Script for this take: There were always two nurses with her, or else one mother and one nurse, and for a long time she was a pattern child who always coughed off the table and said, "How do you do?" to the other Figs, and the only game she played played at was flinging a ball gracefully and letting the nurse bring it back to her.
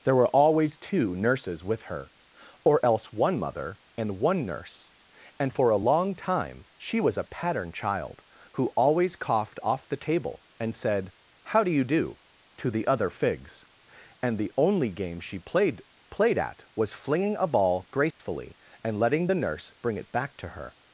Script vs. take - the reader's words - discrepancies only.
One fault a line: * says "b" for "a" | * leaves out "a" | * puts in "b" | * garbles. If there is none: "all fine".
all fine